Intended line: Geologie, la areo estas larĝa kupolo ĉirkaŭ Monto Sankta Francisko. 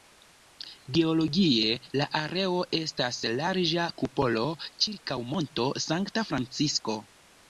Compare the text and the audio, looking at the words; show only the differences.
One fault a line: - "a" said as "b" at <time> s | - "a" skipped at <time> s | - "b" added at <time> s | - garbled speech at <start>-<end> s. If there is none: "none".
none